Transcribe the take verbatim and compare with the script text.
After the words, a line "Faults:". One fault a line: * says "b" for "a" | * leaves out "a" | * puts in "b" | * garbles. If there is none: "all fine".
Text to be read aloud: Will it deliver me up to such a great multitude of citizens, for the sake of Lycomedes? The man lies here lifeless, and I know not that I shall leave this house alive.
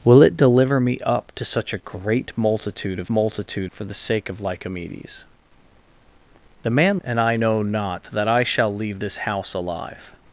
Will it deliver me up to such a great multitude of multitude, for the sake of Lycomedes? The man and I know not that I shall leave this house alive.
Faults:
* says "multitude" for "citizens"
* leaves out "lies here lifeless"